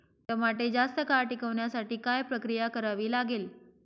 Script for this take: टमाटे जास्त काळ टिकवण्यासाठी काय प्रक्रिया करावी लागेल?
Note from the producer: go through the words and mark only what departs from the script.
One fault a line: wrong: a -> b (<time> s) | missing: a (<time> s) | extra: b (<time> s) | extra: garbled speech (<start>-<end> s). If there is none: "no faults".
no faults